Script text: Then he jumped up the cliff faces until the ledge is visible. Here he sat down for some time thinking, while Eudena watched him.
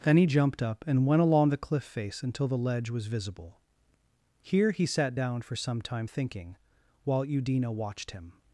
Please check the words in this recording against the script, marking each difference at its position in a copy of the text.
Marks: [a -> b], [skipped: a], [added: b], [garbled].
Then he jumped up [added: and went along] the cliff [faces -> face] until the ledge [is -> was] visible. Here he sat down for some time thinking, while Eudena watched him.